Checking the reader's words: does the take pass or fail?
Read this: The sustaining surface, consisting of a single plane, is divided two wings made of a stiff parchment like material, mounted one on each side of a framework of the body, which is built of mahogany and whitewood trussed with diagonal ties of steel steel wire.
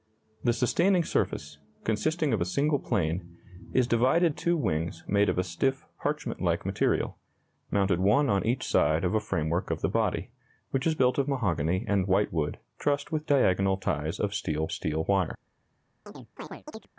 pass